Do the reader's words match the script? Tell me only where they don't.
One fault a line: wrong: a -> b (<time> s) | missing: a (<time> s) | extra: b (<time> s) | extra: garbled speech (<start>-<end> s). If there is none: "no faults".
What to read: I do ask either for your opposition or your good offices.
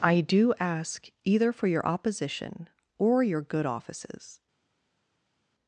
no faults